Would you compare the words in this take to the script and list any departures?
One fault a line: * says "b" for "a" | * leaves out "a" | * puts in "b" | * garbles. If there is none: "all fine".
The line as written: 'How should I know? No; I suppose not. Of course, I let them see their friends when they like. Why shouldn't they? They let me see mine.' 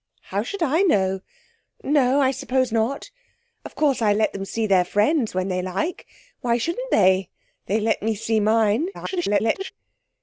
* garbles